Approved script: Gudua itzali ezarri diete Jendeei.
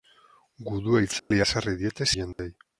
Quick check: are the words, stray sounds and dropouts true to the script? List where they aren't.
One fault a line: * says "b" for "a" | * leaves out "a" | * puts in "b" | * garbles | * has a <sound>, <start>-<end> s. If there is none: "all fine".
* has a dropout, 1.2-1.3 s
* has a dropout, 2.3-2.4 s